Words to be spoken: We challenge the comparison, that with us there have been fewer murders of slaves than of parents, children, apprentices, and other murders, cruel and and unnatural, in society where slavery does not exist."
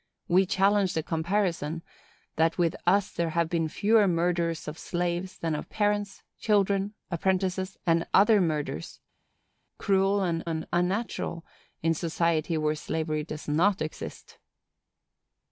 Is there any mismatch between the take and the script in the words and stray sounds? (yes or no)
no